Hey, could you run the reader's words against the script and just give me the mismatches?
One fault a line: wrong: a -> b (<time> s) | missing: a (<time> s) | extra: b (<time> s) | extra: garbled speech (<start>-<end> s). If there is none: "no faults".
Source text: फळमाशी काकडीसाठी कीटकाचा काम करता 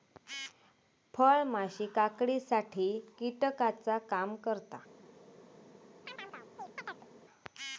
no faults